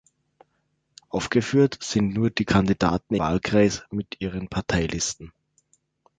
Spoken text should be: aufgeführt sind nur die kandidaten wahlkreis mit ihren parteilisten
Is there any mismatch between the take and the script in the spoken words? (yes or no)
no